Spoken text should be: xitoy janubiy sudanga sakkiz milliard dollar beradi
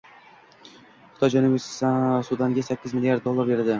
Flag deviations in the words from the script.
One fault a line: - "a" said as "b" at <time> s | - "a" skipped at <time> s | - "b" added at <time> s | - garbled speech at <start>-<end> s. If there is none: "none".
none